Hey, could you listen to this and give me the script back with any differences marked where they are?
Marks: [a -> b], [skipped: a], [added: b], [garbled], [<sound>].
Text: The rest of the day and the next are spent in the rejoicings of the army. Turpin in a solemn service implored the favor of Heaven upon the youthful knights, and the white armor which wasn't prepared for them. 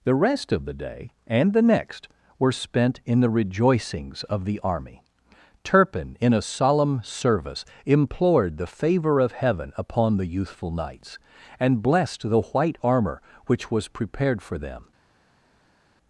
The rest of the day and the next [are -> were] spent in the rejoicings of the army. Turpin in a solemn service implored the favor of Heaven upon the youthful knights, and [added: blessed] the white armor which [wasn't -> was] prepared for them.